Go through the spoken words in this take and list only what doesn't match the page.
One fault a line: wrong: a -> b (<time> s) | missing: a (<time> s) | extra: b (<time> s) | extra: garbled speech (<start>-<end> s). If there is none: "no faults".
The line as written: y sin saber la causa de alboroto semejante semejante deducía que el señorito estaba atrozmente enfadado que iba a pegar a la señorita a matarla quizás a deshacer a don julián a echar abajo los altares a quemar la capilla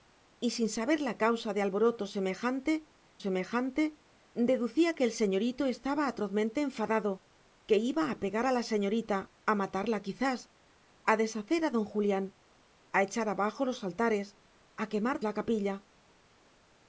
no faults